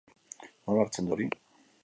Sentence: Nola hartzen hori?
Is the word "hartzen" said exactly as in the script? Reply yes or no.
yes